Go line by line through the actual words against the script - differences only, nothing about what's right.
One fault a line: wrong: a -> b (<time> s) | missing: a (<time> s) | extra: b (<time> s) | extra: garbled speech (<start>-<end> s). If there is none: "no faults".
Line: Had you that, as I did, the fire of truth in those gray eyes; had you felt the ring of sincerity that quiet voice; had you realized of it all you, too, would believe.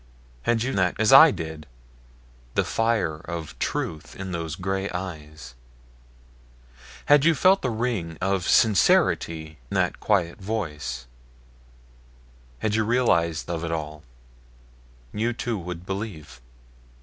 no faults